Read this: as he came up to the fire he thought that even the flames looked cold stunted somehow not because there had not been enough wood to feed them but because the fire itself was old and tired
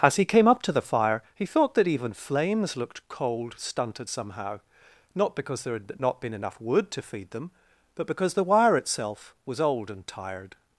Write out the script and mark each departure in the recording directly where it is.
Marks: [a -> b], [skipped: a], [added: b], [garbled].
as he came up to the fire he thought that even [skipped: the] flames looked cold stunted somehow not because there had not been enough wood to feed them but because the [fire -> wire] itself was old and tired